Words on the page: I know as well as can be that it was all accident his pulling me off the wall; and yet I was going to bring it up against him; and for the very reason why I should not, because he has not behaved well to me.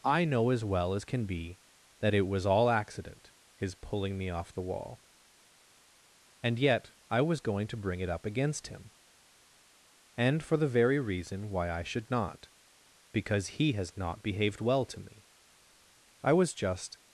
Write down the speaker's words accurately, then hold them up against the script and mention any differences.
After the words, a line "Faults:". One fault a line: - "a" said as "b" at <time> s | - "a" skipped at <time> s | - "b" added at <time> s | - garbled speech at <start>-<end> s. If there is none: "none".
I know as well as can be that it was all accident his pulling me off the wall; and yet I was going to bring it up against him; and for the very reason why I should not, because he has not behaved well to me. I was just
Faults:
- "I was just" added at 16.2 s